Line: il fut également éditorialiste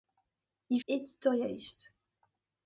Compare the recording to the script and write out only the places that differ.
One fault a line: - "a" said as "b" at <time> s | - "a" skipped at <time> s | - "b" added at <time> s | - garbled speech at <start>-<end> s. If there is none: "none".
- "fut également" skipped at 0.8 s